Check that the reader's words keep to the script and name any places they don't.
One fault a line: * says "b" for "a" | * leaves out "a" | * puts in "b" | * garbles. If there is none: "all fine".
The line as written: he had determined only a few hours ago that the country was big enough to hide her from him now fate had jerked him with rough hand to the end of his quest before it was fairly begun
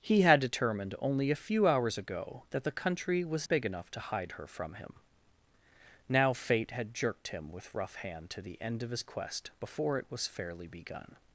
all fine